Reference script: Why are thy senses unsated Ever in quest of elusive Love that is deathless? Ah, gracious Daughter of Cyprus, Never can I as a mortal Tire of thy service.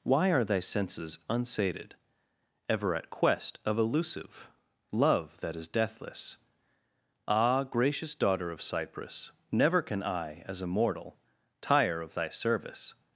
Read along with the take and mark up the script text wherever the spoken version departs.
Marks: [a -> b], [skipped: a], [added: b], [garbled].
Why are thy senses unsated Ever [in -> at] quest of elusive Love that is deathless? Ah, gracious Daughter of Cyprus, Never can I as a mortal Tire of thy service.